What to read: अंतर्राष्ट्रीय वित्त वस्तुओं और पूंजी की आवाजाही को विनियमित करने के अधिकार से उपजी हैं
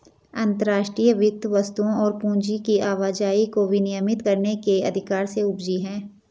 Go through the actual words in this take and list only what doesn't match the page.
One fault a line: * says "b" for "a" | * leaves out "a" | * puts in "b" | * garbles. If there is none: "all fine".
all fine